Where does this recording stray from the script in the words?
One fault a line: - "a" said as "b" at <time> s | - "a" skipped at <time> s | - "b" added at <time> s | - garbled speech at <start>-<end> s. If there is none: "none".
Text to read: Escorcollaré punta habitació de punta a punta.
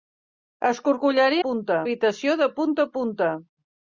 none